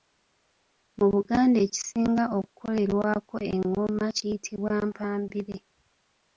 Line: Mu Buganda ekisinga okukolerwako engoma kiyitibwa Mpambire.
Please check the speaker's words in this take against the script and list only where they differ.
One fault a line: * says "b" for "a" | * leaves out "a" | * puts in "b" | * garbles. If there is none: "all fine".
all fine